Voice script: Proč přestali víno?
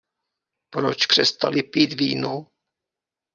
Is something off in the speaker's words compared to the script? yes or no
yes